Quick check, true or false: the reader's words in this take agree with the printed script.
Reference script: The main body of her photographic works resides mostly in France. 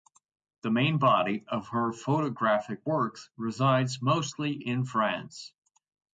true